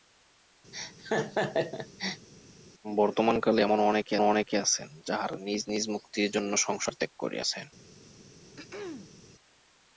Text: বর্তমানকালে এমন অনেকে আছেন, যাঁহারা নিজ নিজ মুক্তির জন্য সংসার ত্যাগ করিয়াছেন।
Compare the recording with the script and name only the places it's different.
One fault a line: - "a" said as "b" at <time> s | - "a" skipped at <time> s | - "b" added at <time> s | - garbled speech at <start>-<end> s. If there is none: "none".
- "অনেকে" added at 4.2 s